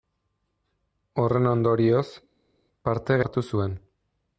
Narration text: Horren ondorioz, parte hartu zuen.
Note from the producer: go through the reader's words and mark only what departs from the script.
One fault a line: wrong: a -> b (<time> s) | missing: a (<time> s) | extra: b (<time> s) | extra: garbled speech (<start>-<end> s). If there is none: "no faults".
no faults